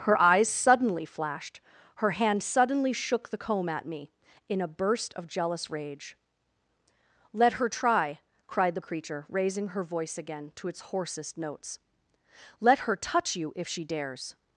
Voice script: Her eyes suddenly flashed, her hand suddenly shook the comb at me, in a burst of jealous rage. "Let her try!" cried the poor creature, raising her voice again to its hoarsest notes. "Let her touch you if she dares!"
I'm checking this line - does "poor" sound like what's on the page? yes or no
no